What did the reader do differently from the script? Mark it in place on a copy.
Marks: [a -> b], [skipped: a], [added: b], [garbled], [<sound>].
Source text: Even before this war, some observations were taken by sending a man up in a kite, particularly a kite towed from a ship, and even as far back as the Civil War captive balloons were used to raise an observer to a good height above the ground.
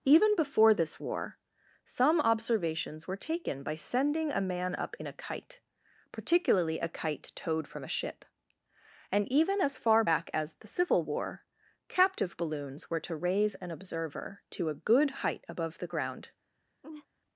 Even before this war, some observations were taken by sending a man up in a kite, particularly a kite towed from a ship, and even as far back as the Civil War captive balloons were [skipped: used] to raise an observer to a good height above the ground. [laugh]